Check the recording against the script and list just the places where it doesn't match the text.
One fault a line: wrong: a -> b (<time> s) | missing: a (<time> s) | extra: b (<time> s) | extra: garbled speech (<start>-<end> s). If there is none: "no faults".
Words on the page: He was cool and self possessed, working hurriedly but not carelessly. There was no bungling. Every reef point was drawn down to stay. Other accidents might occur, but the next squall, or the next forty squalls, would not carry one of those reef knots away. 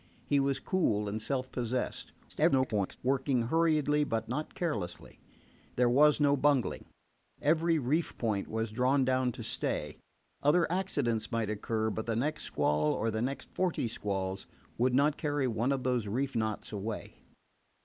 extra: garbled speech (2.3-3.0 s)